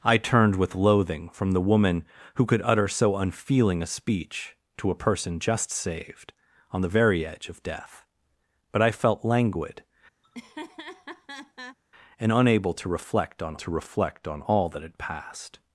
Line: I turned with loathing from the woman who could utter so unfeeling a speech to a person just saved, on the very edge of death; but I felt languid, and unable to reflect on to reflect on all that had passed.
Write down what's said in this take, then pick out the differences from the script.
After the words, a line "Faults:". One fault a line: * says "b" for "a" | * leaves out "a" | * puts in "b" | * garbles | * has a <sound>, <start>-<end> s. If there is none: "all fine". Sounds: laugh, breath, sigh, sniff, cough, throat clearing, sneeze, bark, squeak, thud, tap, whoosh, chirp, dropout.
I turned with loathing from the woman who could utter so unfeeling a speech to a person just saved, on the very edge of death; but I felt languid, and unable to reflect on to reflect on all that had passed.
Faults:
* has a laugh, 10.2-11.8 s